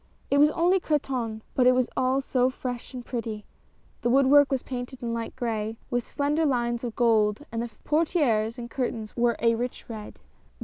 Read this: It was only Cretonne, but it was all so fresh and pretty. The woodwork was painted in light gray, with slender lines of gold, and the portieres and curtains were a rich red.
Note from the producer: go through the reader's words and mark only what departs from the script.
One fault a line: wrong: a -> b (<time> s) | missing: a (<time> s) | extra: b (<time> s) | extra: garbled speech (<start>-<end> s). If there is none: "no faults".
no faults